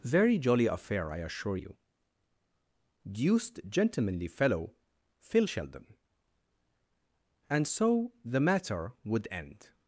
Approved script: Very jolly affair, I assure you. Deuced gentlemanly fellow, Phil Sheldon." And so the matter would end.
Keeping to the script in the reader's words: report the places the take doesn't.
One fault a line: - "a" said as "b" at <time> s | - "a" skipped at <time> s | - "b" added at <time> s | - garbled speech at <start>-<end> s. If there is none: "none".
none